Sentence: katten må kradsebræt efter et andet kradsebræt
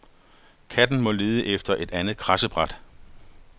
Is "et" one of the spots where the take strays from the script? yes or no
no